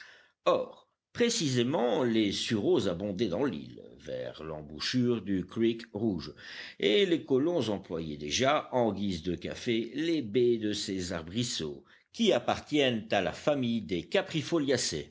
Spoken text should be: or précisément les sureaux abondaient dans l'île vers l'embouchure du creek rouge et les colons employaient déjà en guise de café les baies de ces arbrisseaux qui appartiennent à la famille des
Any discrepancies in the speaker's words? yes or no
no